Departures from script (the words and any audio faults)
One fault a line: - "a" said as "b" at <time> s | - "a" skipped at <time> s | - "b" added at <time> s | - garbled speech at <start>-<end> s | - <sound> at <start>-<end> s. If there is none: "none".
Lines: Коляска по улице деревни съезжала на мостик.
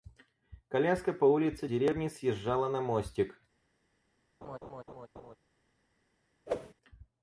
- laugh at 4.4-5.4 s
- whoosh at 6.5-6.7 s